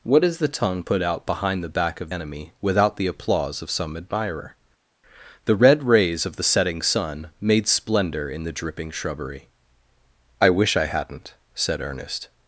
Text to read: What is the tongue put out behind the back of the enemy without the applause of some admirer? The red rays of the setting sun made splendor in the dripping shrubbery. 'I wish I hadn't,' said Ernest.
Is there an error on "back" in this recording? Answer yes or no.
no